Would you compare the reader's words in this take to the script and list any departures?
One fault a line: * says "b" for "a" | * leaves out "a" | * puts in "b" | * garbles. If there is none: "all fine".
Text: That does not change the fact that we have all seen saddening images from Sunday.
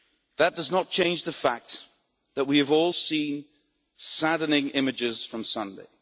all fine